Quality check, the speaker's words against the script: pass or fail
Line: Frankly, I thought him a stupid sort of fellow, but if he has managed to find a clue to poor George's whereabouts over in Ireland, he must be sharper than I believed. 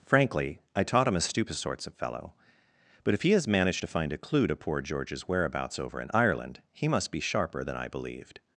fail